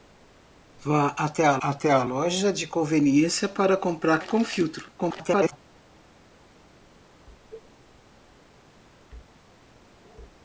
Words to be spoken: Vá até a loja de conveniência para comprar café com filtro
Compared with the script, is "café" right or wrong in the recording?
wrong